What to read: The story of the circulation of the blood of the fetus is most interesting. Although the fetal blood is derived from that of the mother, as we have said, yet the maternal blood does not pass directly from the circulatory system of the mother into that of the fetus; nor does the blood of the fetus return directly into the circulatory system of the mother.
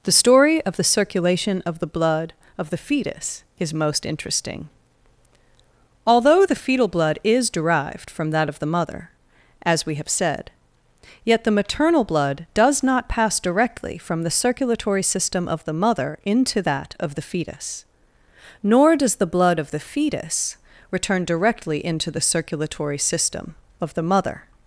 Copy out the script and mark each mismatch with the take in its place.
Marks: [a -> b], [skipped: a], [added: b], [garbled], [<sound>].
The story of the circulation of the blood of the fetus is most interesting. Although the fetal blood is derived from that of the mother, as we have said, yet the maternal blood does not pass directly from the circulatory system of the mother into that of the fetus; nor does the blood of the fetus return directly into the circulatory system of the mother.